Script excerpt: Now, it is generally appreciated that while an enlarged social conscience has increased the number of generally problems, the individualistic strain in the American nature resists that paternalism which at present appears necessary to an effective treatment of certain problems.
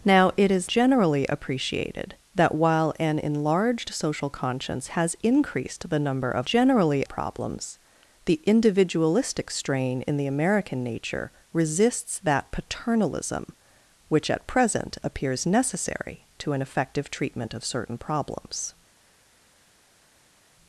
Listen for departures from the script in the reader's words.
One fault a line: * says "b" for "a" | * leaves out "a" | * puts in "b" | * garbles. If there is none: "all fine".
all fine